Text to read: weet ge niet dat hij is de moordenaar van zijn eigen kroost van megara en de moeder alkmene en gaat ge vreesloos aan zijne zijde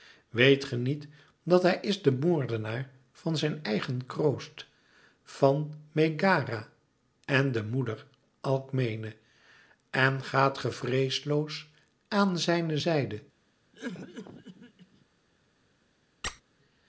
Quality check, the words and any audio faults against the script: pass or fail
fail